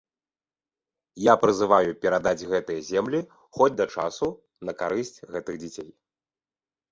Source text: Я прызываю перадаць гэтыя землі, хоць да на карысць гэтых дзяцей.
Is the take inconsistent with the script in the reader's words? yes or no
yes